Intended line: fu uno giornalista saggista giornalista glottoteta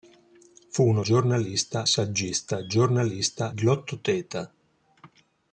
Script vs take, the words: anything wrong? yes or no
no